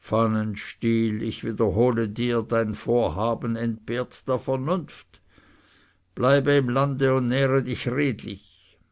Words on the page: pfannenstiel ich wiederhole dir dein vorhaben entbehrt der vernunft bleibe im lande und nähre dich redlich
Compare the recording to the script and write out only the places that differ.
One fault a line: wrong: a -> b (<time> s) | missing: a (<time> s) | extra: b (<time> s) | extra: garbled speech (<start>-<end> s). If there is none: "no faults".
no faults